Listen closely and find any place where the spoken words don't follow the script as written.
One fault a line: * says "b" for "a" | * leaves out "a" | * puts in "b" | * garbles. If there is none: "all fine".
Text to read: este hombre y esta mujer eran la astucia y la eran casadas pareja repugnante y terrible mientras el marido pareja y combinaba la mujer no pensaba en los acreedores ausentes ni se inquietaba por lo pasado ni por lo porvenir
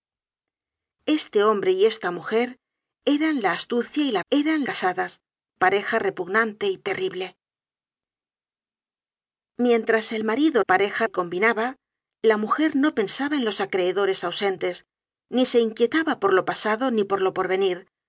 all fine